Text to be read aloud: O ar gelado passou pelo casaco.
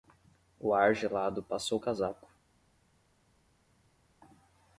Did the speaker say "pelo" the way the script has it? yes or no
no